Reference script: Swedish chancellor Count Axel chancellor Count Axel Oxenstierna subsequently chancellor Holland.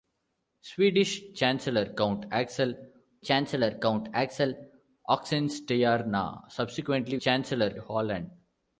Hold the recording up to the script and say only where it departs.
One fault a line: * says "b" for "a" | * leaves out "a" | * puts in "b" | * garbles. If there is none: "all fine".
all fine